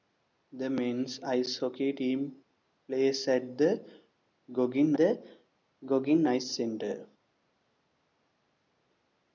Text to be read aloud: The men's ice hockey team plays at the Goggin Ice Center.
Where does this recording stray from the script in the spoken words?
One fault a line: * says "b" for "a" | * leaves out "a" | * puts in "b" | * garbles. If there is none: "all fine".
* puts in "the Goggin"